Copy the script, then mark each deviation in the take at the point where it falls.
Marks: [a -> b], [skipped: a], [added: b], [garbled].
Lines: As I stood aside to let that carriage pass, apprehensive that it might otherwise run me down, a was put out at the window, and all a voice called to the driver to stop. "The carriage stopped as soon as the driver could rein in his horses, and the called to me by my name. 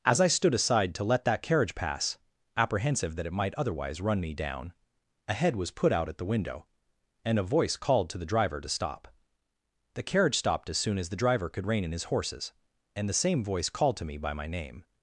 As I stood aside to let that carriage pass, apprehensive that it might otherwise run me down, a [added: head] was put out at the window, and [skipped: all] a voice called to the driver to stop. "The carriage stopped as soon as the driver could rein in his horses, and the [added: same voice] called to me by my name.